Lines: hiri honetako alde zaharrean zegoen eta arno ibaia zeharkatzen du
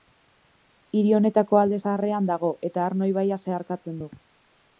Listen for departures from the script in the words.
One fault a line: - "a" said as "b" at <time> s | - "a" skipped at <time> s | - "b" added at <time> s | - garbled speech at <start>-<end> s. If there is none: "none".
- "zegoen" said as "dago" at 2.3 s